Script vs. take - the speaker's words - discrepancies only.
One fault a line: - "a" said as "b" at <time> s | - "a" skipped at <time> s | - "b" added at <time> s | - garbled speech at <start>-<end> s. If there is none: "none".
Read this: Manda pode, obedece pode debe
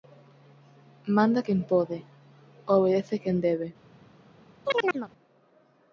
- "quen" added at 1.5 s
- "pode" said as "quen" at 3.2 s